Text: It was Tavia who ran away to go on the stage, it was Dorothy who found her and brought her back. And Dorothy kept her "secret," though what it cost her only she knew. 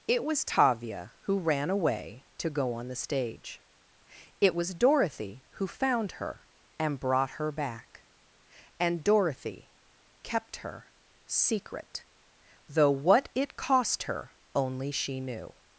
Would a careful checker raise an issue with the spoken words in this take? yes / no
no